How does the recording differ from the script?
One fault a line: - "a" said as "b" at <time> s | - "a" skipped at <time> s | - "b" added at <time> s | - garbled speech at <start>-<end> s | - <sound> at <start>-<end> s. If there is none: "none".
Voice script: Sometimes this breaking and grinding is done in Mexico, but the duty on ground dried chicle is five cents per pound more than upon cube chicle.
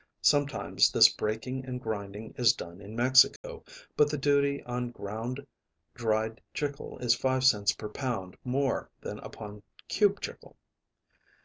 - dropout at 3.4-3.4 s